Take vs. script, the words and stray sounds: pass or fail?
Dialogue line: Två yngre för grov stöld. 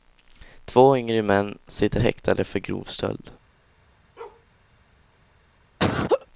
fail